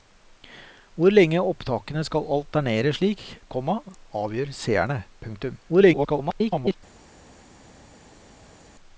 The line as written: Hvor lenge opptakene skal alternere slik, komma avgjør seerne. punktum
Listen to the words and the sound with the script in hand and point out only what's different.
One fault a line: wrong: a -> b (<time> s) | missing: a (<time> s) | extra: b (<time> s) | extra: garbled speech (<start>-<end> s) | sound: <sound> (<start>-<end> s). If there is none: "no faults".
extra: garbled speech (5.7-6.8 s)